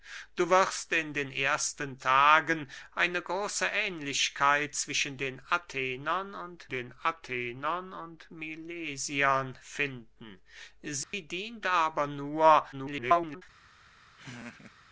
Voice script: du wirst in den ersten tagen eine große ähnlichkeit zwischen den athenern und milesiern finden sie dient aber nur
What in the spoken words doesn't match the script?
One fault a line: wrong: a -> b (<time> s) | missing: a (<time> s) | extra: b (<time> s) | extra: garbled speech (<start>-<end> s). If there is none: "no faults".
extra: den athenern und (6.7 s)
extra: garbled speech (12.7-13.4 s)